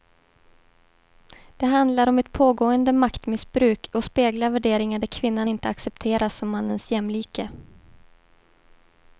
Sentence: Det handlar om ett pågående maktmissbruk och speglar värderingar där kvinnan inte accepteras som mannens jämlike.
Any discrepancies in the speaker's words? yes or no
no